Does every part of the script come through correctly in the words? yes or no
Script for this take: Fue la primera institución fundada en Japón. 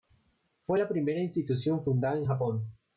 yes